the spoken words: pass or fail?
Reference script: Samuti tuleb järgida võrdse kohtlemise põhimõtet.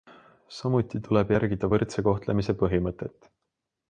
pass